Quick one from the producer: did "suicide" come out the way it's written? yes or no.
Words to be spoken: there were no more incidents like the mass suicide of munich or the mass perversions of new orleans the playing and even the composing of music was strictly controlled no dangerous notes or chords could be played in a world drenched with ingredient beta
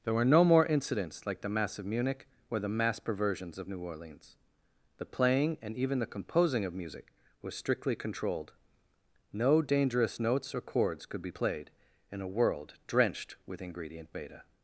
no